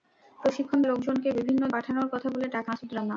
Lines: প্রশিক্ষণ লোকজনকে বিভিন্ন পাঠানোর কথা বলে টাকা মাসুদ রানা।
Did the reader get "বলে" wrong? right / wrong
right